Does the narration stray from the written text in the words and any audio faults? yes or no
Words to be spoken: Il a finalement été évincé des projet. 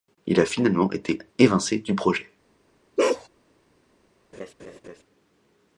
yes